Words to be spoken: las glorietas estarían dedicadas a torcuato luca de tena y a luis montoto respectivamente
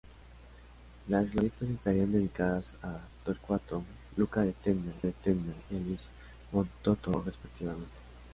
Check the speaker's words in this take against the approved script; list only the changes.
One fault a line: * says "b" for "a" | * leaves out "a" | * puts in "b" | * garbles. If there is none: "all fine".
* puts in "de tena"